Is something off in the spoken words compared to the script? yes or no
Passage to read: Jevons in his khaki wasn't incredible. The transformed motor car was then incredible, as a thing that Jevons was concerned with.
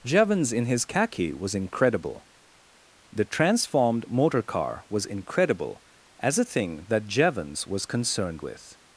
yes